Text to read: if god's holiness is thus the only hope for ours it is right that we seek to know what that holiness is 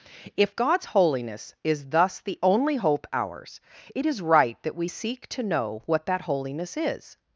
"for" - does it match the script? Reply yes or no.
no